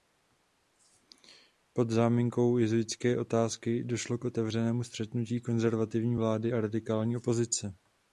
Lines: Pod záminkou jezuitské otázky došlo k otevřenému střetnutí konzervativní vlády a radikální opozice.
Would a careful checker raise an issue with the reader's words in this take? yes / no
no